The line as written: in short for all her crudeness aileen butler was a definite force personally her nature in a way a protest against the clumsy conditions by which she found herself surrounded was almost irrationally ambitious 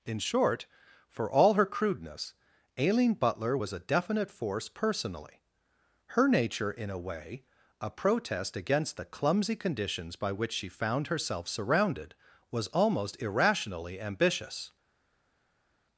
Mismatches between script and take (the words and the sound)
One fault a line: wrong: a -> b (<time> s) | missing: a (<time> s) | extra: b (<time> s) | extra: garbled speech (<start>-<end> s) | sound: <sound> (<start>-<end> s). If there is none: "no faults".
no faults